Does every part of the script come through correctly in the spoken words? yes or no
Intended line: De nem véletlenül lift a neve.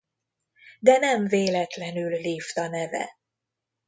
yes